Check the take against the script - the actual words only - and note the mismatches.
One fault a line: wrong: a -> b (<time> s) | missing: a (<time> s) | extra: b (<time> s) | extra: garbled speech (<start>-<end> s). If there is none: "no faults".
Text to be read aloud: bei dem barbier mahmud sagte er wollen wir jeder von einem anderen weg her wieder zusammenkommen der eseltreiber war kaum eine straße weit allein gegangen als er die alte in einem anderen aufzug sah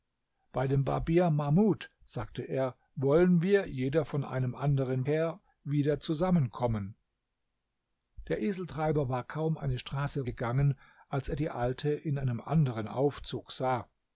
missing: weg (5.0 s)
missing: weit allein (10.3 s)